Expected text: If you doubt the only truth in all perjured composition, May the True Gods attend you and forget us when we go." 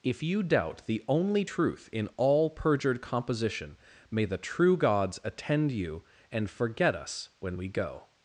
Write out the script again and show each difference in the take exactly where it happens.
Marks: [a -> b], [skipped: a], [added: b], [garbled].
If you doubt the only truth in all perjured composition, May the True Gods attend you and forget us when we go."